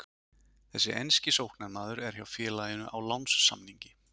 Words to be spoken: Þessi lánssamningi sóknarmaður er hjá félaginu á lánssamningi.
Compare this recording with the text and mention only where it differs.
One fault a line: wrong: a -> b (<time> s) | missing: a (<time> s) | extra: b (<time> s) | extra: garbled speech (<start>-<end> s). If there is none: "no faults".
wrong: lánssamningi -> enski (1.0 s)